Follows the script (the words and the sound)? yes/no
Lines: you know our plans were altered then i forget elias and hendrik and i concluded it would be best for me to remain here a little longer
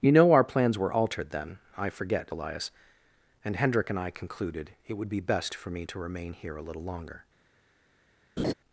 no